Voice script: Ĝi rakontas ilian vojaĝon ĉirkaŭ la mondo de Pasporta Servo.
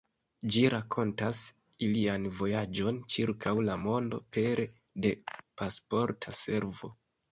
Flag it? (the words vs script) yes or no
yes